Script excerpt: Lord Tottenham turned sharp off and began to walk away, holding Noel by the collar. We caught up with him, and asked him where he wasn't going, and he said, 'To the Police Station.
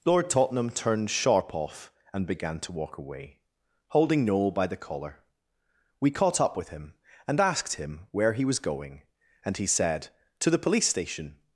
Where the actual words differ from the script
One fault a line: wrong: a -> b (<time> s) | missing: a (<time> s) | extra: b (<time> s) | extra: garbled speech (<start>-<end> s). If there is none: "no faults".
wrong: wasn't -> was (8.4 s)